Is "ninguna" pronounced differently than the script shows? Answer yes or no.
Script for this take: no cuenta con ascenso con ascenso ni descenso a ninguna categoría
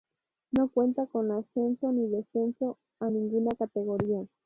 no